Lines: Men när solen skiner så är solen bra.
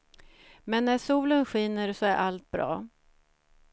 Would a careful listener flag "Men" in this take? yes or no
no